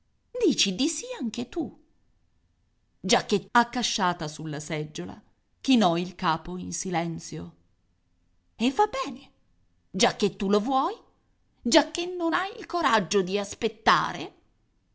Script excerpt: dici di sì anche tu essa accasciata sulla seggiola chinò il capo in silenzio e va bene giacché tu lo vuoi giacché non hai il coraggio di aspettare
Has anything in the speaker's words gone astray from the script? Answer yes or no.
yes